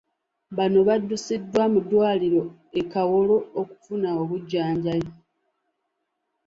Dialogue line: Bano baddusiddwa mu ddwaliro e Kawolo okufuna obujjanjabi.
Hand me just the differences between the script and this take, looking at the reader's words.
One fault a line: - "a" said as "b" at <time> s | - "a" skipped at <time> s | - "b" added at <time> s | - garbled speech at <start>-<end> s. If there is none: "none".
none